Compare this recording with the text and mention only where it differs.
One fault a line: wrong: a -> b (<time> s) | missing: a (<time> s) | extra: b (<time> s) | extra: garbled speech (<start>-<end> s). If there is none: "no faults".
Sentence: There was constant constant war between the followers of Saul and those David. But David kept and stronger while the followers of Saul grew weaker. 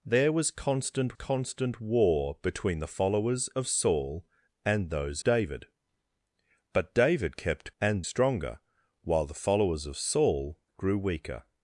no faults